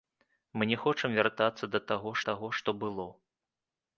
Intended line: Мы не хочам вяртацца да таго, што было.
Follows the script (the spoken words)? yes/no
no